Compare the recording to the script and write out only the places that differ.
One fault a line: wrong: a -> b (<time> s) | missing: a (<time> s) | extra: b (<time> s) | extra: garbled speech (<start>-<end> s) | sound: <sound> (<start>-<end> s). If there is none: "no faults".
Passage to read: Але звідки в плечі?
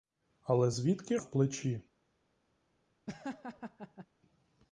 sound: laugh (3.1-4.1 s)